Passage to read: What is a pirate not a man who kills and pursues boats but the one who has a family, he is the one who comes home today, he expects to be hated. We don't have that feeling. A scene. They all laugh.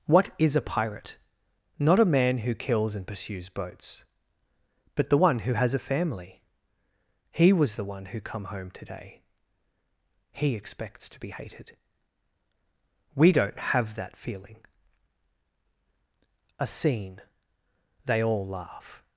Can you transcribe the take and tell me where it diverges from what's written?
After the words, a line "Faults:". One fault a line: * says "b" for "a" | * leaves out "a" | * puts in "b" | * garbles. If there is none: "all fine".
What is a pirate not a man who kills and pursues boats but the one who has a family, he was the one who come home today, he expects to be hated. We don't have that feeling. A scene. They all laugh.
Faults:
* says "was" for "is"
* says "come" for "comes"